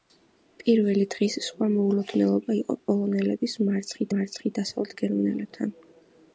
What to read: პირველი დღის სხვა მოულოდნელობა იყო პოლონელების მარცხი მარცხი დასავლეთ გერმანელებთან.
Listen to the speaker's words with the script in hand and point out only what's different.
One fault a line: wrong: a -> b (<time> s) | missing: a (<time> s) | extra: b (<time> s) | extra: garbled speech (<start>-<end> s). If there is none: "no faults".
no faults